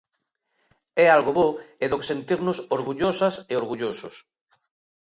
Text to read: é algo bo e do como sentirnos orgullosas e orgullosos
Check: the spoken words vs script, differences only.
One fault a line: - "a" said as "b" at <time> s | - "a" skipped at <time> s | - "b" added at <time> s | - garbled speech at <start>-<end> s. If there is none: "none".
- "como" said as "que" at 2.0 s